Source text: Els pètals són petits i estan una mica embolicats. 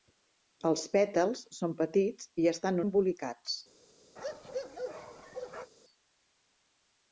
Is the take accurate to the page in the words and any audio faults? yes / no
no